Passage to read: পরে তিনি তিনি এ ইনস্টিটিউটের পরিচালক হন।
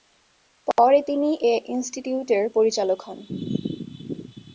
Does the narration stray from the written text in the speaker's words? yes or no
yes